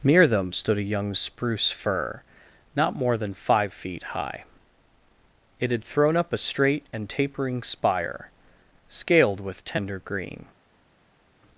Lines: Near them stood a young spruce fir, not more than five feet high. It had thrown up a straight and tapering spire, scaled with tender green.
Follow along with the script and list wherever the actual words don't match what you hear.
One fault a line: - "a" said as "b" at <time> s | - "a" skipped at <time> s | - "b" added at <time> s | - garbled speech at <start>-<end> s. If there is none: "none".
none